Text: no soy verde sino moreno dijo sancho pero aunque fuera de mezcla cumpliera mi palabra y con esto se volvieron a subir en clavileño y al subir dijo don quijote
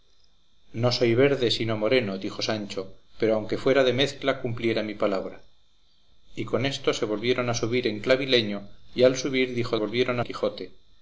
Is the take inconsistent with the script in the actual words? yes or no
yes